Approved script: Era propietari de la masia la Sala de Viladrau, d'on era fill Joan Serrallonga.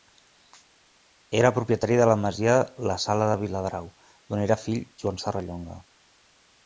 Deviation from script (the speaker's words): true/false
false